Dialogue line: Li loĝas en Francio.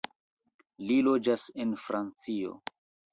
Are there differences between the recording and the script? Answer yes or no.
no